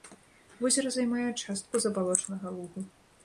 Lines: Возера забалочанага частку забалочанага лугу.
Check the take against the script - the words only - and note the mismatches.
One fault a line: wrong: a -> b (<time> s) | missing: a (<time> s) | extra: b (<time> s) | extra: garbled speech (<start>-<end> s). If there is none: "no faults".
wrong: забалочанага -> займае (0.9 s)